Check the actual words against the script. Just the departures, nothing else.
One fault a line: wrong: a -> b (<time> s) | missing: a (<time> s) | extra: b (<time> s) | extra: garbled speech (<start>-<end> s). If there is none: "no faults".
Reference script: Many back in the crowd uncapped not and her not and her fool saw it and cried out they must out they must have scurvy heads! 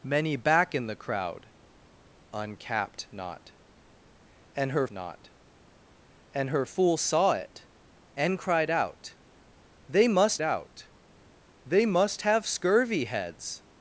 no faults